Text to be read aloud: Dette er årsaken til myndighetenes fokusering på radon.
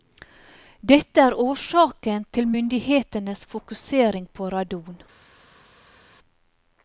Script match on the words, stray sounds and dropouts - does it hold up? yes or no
yes